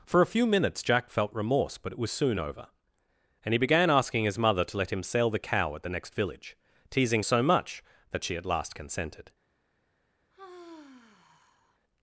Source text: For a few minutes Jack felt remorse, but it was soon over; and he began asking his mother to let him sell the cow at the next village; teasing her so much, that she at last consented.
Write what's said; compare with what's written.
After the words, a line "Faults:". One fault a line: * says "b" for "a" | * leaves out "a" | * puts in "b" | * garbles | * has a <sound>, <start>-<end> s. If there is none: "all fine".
For a few minutes Jack felt remorse, but it was soon over; and he began asking his mother to let him sell the cow at the next village; teasing so much, that she at last consented.
Faults:
* leaves out "her"
* has a sigh, 10.3-11.8 s